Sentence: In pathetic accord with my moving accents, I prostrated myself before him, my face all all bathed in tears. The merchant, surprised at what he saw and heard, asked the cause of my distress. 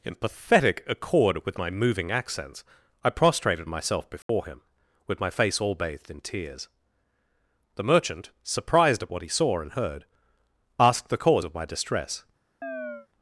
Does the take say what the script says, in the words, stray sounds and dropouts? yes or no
no